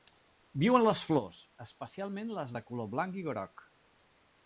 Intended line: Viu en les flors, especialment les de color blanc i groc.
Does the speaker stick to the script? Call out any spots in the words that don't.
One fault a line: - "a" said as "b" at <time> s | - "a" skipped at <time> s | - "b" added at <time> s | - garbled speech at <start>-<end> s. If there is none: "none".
none